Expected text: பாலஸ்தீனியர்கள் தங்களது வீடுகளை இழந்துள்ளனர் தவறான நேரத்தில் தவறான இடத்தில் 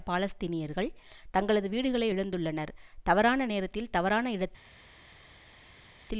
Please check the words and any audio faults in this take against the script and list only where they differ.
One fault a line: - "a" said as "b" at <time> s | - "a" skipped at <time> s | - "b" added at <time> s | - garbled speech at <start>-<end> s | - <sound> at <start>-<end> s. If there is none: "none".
none